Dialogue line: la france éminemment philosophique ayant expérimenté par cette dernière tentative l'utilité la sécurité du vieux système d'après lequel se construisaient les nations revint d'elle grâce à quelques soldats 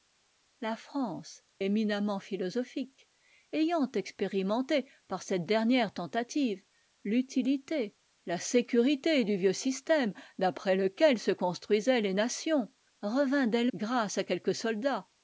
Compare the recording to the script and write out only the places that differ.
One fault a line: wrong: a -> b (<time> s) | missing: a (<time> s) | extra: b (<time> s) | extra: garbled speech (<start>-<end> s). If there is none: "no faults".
no faults